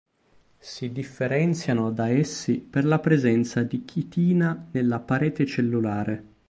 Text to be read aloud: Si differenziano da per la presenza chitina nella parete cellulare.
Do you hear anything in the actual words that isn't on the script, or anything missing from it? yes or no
yes